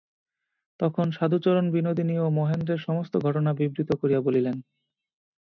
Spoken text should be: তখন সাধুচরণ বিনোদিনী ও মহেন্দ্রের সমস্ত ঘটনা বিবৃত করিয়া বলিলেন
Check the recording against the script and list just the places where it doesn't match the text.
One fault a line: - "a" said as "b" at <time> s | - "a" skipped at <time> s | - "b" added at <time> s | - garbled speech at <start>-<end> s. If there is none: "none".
none